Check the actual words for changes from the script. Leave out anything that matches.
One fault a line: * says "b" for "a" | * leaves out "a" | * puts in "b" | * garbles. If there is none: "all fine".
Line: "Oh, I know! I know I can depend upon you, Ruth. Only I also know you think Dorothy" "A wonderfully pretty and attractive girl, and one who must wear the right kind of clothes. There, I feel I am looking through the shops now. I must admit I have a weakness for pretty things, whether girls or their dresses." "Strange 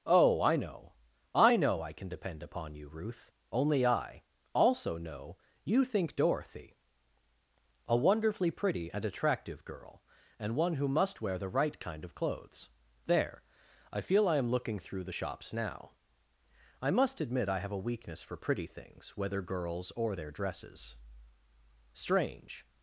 all fine